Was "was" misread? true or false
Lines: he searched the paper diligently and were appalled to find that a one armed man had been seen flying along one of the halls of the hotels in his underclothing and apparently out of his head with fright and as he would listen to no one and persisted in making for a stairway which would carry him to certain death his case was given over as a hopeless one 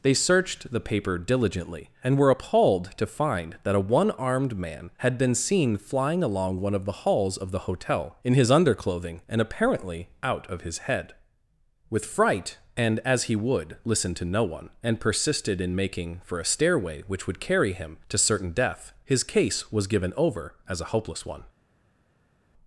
false